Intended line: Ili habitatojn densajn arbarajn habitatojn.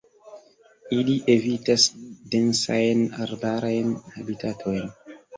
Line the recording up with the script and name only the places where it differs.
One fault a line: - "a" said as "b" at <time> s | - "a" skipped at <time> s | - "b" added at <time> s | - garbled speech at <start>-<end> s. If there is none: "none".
- "habitatojn" said as "evitas" at 1.3 s